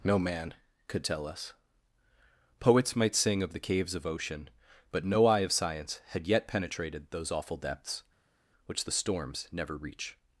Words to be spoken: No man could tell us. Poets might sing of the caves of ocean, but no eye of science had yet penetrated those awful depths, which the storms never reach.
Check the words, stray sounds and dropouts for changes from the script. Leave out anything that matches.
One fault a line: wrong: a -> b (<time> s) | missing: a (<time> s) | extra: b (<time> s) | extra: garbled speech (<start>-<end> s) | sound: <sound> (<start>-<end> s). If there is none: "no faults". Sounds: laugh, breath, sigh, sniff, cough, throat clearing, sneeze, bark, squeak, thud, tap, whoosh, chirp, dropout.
no faults